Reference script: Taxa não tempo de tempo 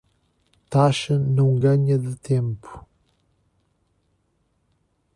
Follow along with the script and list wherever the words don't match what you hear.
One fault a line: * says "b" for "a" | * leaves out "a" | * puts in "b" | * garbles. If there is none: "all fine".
* says "ganha" for "tempo"